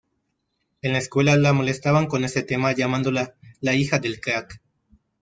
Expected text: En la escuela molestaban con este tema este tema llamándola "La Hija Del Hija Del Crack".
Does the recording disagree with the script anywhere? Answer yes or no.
yes